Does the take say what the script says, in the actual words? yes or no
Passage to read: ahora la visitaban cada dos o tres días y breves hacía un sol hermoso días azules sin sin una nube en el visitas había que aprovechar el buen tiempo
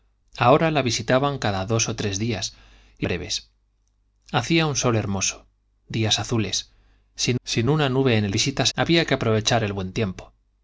yes